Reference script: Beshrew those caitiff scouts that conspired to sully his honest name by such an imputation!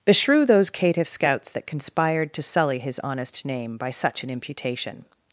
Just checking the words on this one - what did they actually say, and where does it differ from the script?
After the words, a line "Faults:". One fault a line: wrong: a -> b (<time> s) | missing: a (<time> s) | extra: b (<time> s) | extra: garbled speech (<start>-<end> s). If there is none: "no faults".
Beshrew those caitiff scouts that conspired to sully his honest name by such an imputation!
Faults:
no faults